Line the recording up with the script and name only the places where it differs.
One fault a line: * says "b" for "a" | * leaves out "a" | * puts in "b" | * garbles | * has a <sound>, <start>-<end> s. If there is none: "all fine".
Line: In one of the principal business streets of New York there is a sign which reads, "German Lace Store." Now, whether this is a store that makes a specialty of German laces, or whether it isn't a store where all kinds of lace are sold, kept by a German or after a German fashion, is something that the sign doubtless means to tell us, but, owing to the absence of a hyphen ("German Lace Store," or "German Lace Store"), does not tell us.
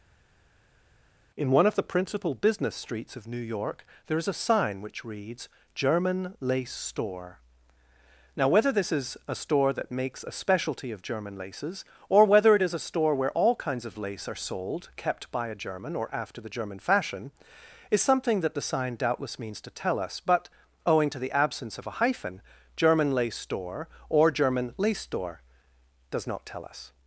* says "is" for "isn't"
* says "the" for "a"